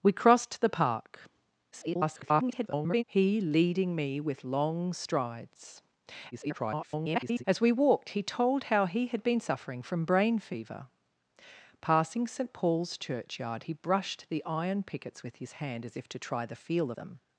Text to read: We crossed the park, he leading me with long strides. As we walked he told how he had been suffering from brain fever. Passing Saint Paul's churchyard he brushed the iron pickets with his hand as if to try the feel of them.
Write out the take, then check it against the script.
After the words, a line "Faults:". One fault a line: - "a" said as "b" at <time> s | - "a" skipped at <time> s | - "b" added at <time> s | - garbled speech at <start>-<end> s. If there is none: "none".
We crossed the park, [garbled] he leading me with long strides. [garbled] As we walked he told how he had been suffering from brain fever. Passing Saint Paul's churchyard he brushed the iron pickets with his hand as if to try the feel them.
Faults:
- garbled speech at 1.7-3.0 s
- garbled speech at 6.3-7.4 s
- "of" skipped at 16.9 s